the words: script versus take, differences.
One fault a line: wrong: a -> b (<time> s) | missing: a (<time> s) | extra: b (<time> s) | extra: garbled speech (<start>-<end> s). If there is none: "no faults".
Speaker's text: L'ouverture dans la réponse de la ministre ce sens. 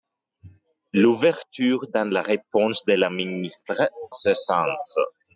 no faults